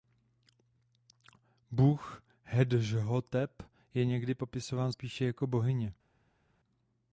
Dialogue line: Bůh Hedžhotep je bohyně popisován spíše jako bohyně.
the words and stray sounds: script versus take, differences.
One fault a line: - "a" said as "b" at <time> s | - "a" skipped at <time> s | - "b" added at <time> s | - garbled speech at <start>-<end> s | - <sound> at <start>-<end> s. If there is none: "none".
- "bohyně" said as "někdy" at 4.0 s